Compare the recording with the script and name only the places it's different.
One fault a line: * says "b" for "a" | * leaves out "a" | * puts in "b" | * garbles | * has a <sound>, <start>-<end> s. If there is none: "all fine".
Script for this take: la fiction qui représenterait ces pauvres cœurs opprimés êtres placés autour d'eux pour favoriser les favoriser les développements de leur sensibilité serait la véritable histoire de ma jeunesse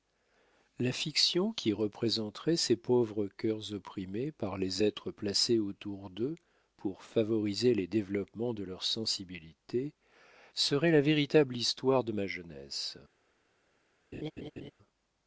* puts in "par les"
* leaves out "favoriser les"
* has a laugh, 14.1-14.7 s